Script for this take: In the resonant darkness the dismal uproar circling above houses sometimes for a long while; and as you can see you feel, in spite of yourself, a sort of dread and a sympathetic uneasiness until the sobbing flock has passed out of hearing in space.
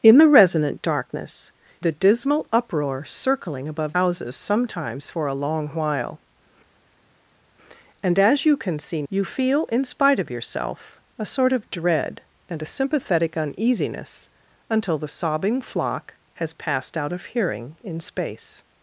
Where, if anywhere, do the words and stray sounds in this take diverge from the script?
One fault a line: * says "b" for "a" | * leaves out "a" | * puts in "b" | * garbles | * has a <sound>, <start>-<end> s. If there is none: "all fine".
all fine